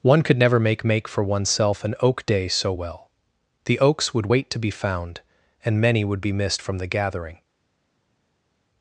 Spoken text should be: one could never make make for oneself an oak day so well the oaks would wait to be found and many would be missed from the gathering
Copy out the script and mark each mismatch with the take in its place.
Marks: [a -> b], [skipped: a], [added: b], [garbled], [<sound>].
one could never make make for oneself an oak day so well the oaks would wait to be found and many would be missed from the gathering